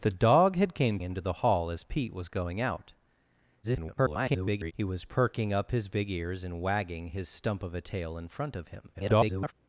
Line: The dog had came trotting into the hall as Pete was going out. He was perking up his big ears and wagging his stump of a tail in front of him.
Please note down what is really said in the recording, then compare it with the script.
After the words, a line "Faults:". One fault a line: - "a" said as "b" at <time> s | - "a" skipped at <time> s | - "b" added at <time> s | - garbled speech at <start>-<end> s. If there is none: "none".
The dog had came into the hall as Pete was going out. [garbled] He was perking up his big ears and wagging his stump of a tail in front of him. [garbled]
Faults:
- "trotting" skipped at 1.0 s
- garbled speech at 3.6-4.7 s
- garbled speech at 8.9-9.5 s